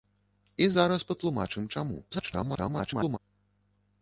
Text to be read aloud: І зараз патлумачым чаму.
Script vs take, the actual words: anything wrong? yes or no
yes